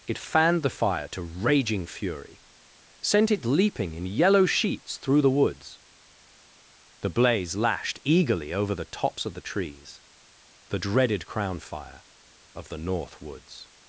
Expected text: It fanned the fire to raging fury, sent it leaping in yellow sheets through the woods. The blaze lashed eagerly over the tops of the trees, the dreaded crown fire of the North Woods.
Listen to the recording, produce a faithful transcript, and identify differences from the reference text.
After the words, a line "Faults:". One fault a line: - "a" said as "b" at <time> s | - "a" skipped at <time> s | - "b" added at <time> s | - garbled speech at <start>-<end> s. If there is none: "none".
It fanned the fire to raging fury, sent it leaping in yellow sheets through the woods. The blaze lashed eagerly over the tops of the trees, the dreaded crown fire of the North Woods.
Faults:
none